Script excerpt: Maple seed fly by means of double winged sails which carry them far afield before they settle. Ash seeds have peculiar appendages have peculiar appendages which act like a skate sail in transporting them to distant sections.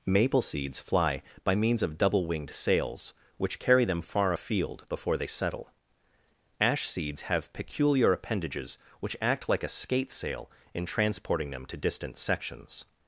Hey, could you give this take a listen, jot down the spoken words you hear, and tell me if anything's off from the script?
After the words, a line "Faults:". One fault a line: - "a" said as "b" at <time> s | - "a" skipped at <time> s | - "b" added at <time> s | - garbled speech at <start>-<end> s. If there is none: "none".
Maple seeds fly by means of double winged sails which carry them far afield before they settle. Ash seeds have peculiar appendages which act like a skate sail in transporting them to distant sections.
Faults:
- "seed" said as "seeds" at 0.4 s
- "have peculiar appendages" skipped at 8.8 s